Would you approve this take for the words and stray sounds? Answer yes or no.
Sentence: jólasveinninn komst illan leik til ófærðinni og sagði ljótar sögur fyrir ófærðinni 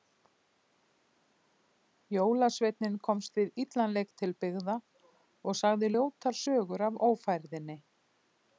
no